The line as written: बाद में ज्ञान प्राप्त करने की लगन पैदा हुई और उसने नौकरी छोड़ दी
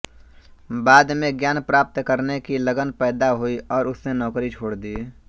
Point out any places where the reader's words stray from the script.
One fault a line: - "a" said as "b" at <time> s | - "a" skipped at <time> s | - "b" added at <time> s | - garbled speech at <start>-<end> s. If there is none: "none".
none